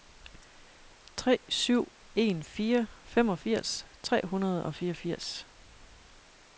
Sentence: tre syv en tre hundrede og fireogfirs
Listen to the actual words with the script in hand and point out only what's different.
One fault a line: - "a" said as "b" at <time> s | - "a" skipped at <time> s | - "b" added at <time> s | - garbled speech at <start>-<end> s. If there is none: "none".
- "fire femogfirs" added at 2.4 s